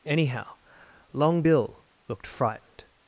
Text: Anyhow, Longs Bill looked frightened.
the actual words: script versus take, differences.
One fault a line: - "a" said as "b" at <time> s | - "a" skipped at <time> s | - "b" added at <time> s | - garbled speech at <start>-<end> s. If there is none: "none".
- "Longs" said as "Long" at 1.1 s